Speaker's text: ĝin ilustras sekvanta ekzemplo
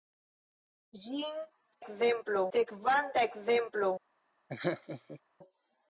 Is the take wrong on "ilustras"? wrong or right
wrong